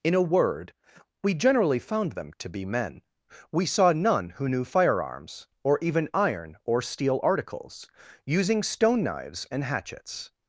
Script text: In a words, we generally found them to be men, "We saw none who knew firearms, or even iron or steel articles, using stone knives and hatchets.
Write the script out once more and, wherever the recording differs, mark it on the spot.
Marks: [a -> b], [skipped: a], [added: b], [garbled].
In a [words, -> word] we generally found them to be men, "We saw none who knew firearms, or even iron or steel articles, using stone knives and hatchets.